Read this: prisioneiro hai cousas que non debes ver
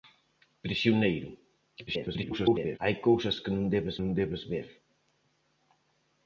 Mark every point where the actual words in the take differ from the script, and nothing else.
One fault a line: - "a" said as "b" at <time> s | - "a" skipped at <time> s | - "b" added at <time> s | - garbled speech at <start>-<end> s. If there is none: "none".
- garbled speech at 1.9-2.8 s
- "non debes" added at 4.0 s